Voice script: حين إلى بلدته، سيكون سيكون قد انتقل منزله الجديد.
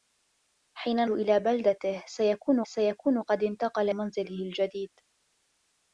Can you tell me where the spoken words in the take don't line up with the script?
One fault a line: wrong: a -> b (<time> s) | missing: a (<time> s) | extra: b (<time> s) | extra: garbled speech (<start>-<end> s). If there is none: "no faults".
no faults